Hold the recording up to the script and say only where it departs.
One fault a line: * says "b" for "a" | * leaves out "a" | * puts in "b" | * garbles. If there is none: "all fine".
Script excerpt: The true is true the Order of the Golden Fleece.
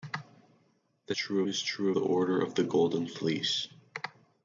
all fine